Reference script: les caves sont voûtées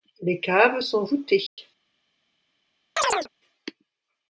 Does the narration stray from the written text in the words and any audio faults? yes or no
yes